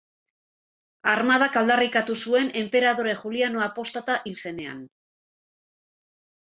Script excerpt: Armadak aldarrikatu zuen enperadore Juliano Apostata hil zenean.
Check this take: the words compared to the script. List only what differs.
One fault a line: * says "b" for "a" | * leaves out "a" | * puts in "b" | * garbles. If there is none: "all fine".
all fine